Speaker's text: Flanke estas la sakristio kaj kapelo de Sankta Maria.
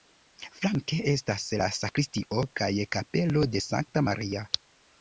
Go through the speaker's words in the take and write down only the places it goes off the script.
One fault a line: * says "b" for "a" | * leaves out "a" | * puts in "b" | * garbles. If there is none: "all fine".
all fine